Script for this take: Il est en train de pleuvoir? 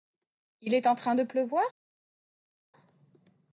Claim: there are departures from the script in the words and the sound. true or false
false